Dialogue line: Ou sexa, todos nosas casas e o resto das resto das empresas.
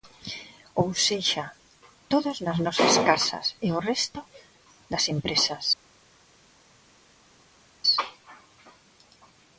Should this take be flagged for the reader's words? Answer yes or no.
yes